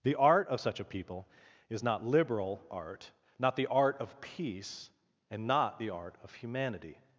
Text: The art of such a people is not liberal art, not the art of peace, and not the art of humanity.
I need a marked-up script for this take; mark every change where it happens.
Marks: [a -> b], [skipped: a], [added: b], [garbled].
The art of such a people is not liberal art, not the art of peace, and not the art of humanity.